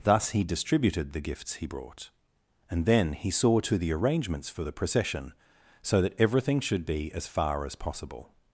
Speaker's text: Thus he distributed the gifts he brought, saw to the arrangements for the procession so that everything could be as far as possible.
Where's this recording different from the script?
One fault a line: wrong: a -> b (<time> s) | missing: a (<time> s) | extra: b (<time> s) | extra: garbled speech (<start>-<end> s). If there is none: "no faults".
extra: and then he (2.7 s)
wrong: could -> should (6.6 s)